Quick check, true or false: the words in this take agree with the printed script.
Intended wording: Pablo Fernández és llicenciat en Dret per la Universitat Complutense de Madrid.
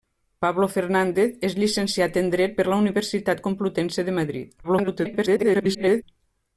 false